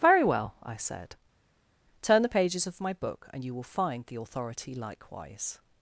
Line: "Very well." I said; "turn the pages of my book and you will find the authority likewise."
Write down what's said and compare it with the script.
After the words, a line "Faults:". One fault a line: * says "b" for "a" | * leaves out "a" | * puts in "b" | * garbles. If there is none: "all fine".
"Very well." I said; "turn the pages of my book and you will find the authority likewise."
Faults:
all fine